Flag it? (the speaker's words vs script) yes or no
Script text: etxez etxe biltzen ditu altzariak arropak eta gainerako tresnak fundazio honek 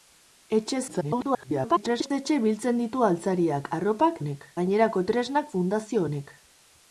yes